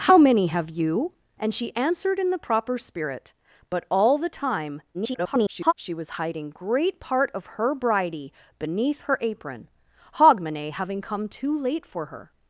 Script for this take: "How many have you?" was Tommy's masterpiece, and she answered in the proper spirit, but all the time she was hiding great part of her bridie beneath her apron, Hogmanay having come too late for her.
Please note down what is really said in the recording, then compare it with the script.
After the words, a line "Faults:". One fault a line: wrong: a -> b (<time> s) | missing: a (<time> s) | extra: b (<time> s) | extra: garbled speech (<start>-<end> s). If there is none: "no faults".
"How many have you?" and she answered in the proper spirit, but all the time [garbled] she was hiding great part of her bridie beneath her apron, Hogmanay having come too late for her.
Faults:
missing: was Tommy's masterpiece (1.1 s)
extra: garbled speech (4.9-5.7 s)